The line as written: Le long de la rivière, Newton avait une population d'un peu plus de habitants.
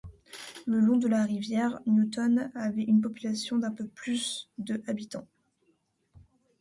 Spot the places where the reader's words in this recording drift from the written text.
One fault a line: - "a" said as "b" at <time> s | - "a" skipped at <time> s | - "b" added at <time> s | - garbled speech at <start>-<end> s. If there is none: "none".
none